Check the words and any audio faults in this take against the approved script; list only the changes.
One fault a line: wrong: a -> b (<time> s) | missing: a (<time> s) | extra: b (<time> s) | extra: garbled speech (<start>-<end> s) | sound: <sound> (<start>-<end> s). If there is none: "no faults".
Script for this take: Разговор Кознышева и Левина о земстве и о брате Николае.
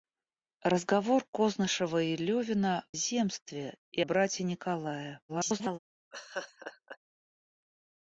missing: о (2.9 s)
missing: о (4.0 s)
extra: garbled speech (5.3-5.8 s)
sound: laugh (6.1-7.0 s)